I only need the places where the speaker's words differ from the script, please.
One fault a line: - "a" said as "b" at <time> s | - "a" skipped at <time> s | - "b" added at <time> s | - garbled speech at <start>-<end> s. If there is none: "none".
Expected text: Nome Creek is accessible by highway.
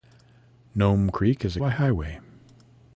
- "accessible" skipped at 1.6 s